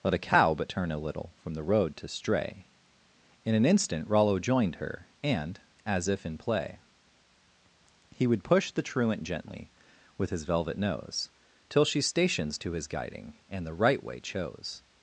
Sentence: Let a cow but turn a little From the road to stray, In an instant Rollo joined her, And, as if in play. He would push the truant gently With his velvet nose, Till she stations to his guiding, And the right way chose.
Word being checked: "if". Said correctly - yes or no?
yes